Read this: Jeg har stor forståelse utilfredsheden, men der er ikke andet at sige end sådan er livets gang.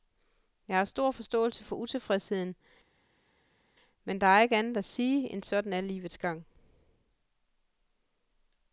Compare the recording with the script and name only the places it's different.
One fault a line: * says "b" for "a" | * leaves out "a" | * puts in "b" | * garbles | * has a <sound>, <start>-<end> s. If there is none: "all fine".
* puts in "for"